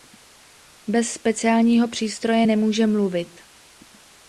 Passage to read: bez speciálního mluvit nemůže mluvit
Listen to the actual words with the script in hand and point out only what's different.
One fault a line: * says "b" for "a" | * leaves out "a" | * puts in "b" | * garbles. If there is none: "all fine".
* says "přístroje" for "mluvit"